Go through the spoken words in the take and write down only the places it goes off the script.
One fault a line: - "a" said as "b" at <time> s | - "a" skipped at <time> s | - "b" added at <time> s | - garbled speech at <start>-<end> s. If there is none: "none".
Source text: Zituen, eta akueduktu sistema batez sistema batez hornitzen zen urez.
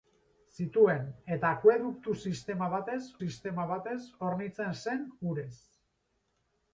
none